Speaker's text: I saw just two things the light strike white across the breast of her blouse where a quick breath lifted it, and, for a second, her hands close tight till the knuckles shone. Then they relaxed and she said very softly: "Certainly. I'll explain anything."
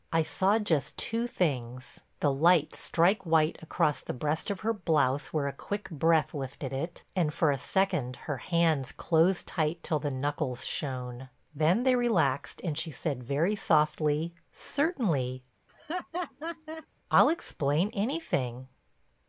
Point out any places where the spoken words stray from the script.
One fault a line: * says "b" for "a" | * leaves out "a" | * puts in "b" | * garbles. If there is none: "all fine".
all fine